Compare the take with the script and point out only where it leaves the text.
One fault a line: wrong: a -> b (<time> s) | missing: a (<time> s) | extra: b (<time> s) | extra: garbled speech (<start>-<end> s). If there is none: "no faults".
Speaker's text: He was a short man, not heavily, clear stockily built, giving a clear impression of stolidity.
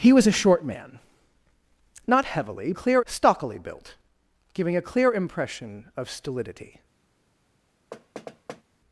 no faults